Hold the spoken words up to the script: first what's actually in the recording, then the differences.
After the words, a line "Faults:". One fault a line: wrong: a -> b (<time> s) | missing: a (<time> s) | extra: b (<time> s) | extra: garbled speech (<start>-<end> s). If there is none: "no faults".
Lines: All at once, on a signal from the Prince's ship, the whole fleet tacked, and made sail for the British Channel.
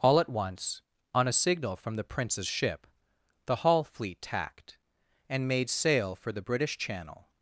All at once, on a signal from the Prince's ship, the hall fleet tacked, and made sail for the British Channel.
Faults:
wrong: whole -> hall (3.6 s)